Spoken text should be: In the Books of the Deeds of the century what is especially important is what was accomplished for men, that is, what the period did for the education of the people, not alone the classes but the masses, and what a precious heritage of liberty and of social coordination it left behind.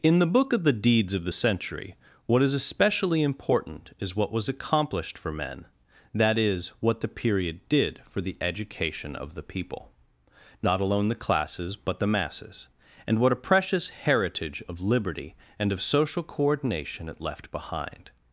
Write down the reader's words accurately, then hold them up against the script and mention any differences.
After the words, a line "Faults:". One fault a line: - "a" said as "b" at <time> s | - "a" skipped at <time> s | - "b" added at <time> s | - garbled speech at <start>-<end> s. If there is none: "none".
In the Book of the Deeds of the century what is especially important is what was accomplished for men, that is, what the period did for the education of the people, not alone the classes but the masses, and what a precious heritage of liberty and of social coordination it left behind.
Faults:
- "Books" said as "Book" at 0.3 s